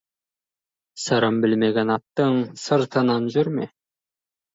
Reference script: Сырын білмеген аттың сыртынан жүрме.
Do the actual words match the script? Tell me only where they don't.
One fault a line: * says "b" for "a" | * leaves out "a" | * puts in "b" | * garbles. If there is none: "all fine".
all fine